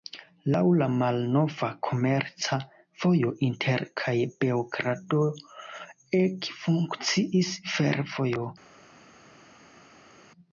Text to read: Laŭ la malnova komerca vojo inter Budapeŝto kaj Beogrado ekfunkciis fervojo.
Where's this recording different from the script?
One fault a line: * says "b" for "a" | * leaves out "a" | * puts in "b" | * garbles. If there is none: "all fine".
* leaves out "Budapeŝto"